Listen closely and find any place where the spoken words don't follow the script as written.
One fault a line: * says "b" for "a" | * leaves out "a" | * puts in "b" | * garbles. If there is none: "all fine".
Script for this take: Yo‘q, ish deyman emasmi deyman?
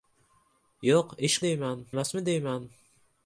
all fine